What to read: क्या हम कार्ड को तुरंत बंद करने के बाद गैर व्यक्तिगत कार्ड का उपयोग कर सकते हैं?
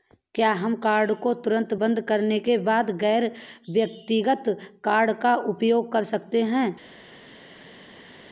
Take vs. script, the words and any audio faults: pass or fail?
pass